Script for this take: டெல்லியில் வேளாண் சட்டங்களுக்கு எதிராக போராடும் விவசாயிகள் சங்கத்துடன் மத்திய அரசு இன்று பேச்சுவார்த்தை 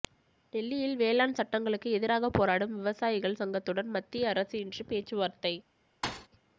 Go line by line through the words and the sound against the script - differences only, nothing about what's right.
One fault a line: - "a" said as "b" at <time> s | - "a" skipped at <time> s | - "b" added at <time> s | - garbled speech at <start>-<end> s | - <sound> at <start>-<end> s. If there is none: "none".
- thud at 6.0-6.3 s